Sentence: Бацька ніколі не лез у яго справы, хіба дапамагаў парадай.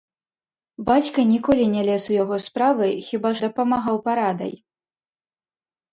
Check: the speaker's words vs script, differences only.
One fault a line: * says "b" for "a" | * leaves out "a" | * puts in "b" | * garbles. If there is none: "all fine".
all fine